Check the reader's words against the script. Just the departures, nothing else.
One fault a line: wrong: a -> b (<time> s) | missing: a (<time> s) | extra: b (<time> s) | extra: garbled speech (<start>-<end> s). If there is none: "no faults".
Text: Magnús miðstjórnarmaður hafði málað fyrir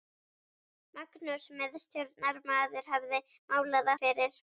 no faults